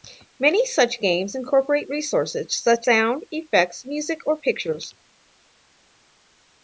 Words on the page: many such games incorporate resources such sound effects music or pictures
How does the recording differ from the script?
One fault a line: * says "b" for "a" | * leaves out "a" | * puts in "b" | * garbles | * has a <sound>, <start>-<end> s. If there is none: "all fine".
all fine